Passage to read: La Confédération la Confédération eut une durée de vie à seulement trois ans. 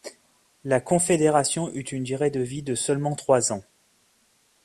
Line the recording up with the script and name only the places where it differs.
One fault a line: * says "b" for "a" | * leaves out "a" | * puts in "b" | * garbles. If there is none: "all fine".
* leaves out "la Confédération"
* says "de" for "à"